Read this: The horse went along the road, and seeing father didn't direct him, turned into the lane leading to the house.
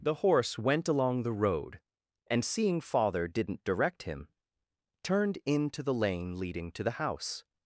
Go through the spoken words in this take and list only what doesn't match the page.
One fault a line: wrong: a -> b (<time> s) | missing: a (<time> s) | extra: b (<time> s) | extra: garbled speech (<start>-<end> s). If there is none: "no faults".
no faults